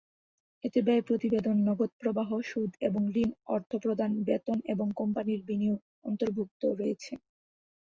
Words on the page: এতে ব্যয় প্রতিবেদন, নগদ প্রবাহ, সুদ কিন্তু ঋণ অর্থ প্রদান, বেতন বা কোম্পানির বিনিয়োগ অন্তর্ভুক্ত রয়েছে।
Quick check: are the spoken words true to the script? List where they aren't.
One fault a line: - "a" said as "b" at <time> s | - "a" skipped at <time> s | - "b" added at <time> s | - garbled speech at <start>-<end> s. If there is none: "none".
- "কিন্তু" said as "এবং" at 2.9 s
- "বা" said as "এবং" at 4.7 s